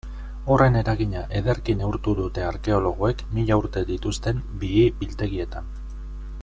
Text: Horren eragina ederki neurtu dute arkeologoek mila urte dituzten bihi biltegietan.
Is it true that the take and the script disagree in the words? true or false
false